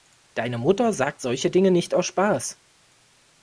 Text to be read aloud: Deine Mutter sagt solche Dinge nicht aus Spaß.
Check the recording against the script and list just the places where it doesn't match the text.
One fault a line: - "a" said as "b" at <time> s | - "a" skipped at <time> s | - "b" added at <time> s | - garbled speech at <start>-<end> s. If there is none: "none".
none